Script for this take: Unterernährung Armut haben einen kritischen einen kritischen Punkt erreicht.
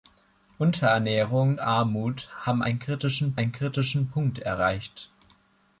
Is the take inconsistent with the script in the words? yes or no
no